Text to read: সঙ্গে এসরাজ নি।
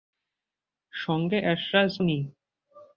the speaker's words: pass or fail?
pass